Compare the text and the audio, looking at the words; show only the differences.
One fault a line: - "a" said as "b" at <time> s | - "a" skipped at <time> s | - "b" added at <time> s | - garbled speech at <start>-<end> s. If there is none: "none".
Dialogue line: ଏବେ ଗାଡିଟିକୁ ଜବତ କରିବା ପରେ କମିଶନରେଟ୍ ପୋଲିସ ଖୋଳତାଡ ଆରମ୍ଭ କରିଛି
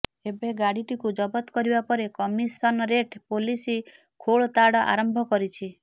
none